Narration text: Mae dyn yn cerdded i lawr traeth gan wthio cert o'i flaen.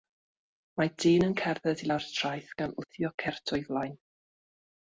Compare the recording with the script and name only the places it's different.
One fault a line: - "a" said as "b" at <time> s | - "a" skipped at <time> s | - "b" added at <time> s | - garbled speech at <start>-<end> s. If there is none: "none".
none